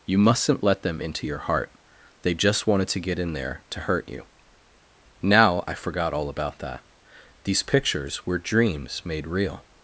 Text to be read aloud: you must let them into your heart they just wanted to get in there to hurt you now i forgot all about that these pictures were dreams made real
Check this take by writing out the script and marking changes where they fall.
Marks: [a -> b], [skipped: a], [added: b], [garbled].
you [must -> mustn't] let them into your heart they just wanted to get in there to hurt you now i forgot all about that these pictures were dreams made real